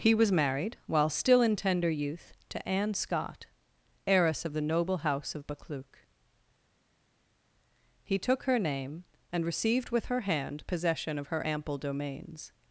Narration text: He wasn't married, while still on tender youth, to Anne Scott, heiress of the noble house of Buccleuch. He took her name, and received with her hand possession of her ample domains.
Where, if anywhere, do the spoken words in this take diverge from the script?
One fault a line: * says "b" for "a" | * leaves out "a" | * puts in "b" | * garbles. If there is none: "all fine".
* says "was" for "wasn't"
* says "in" for "on"